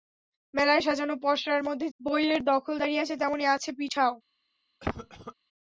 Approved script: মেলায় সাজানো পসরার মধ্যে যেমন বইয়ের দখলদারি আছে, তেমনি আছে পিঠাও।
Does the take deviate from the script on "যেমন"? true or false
true